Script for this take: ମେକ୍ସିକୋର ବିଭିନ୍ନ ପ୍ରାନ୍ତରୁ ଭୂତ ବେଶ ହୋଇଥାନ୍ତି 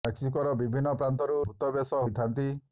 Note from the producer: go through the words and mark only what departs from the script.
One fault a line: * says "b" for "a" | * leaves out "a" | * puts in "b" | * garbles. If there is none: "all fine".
all fine